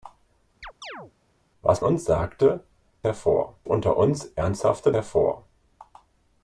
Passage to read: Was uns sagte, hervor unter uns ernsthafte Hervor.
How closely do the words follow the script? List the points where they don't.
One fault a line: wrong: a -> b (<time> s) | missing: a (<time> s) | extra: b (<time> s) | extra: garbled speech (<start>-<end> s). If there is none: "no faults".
no faults